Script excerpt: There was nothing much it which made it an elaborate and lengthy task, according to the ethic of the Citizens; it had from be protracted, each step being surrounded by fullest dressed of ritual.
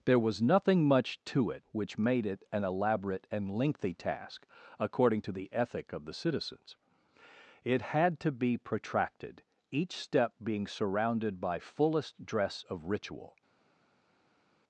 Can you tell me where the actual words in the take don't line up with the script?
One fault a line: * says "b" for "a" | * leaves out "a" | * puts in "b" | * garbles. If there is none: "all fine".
* puts in "to"
* says "to" for "from"
* says "dress" for "dressed"